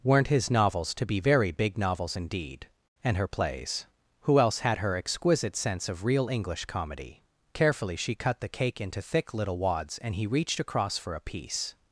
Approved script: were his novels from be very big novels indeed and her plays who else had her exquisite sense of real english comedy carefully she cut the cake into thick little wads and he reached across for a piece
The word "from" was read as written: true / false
false